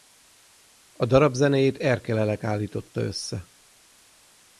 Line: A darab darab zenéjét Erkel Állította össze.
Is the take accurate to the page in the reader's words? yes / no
no